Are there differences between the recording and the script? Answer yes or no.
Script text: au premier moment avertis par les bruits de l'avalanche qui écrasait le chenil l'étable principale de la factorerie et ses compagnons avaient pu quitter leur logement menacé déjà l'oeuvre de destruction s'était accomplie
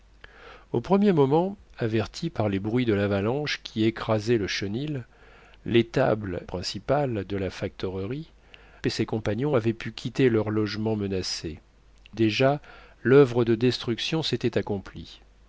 no